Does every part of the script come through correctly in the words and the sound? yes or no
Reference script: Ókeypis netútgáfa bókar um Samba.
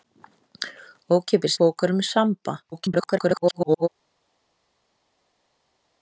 no